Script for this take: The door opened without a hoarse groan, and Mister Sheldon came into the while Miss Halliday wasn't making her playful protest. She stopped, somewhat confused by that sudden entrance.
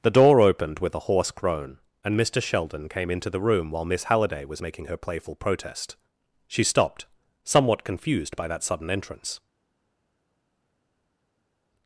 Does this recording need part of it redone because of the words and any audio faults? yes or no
yes